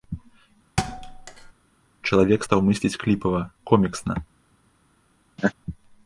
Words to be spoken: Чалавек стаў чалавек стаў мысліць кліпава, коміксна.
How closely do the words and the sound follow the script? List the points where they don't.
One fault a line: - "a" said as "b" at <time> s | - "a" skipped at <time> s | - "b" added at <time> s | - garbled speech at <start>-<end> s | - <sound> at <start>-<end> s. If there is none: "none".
- thud at 0.8-1.5 s
- "чалавек стаў" skipped at 2.6 s
- laugh at 5.4-5.5 s